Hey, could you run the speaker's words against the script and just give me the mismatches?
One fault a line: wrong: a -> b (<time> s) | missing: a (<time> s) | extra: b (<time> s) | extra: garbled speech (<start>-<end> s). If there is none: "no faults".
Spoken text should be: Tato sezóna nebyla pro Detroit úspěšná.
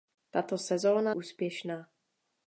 missing: nebyla pro Detroit (1.1 s)